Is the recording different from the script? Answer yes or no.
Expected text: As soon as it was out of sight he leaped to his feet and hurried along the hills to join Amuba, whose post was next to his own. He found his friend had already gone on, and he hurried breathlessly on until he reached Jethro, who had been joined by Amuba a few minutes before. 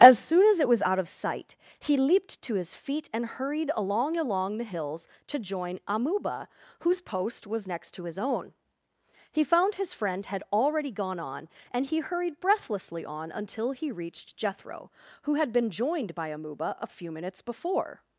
yes